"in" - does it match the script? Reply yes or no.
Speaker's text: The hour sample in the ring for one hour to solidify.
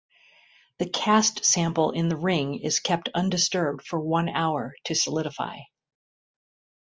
yes